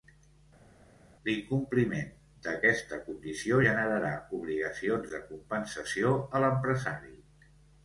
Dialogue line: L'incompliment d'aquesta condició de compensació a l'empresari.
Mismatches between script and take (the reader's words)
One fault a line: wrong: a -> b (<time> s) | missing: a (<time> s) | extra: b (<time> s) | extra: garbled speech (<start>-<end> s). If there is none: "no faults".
extra: generarà obligacions (3.7 s)